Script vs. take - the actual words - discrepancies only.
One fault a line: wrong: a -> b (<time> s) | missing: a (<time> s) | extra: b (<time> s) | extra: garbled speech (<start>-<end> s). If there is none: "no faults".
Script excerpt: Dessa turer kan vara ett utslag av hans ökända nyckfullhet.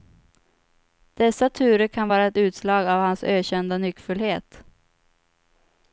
no faults